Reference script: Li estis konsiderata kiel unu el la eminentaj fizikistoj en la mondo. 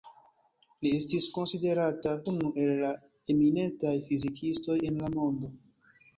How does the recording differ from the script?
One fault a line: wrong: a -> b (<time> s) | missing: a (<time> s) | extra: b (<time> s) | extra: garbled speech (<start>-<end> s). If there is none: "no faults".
missing: kiel (2.1 s)